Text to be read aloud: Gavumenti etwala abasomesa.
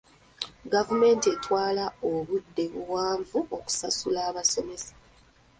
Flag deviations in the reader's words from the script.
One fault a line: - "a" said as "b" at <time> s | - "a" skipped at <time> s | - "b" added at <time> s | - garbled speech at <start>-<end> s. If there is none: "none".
- "obudde buwanvu okusasula" added at 2.1 s